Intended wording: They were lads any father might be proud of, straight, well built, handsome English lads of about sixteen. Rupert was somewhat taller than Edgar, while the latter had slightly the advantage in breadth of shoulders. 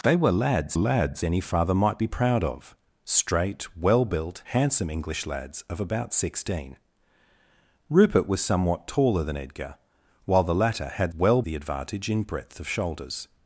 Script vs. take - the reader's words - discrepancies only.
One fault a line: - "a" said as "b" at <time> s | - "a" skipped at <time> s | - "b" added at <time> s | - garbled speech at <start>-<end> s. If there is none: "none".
- "lads" added at 0.7 s
- "slightly" said as "well" at 11.1 s